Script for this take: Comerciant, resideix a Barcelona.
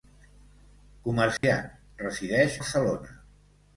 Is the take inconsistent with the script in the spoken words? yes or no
yes